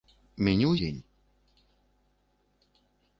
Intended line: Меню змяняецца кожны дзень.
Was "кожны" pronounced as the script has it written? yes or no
no